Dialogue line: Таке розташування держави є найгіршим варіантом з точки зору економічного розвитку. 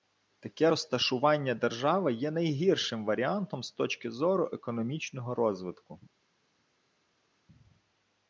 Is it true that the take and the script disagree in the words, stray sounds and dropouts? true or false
false